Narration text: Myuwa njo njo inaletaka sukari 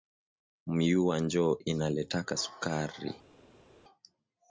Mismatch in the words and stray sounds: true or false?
true